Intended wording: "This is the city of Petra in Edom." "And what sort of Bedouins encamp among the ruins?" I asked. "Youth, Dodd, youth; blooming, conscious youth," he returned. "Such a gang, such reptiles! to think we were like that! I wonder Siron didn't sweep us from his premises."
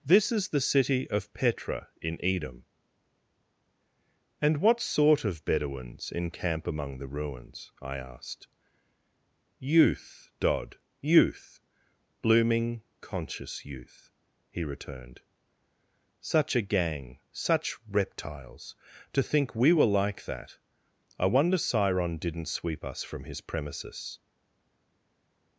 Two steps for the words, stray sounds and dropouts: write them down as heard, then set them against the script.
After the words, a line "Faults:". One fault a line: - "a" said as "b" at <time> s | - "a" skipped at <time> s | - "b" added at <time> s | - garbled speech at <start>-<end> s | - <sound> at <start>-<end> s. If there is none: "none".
"This is the city of Petra in Edom." "And what sort of Bedouins encamp among the ruins?" I asked. "Youth, Dodd, youth; blooming, conscious youth," he returned. "Such a gang, such reptiles! to think we were like that! I wonder Siron didn't sweep us from his premises."
Faults:
none